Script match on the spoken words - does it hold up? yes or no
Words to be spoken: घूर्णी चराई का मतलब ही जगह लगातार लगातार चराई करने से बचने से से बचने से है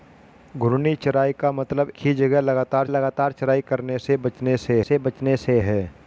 yes